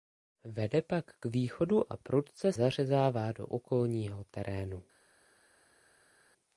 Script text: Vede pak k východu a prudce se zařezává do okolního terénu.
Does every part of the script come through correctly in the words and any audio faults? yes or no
no